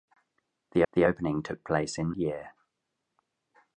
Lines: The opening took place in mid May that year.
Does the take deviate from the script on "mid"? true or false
true